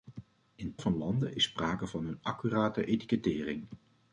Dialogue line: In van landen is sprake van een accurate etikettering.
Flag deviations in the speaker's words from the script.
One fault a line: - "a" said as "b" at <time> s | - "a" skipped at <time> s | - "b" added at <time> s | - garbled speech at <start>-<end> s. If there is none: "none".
none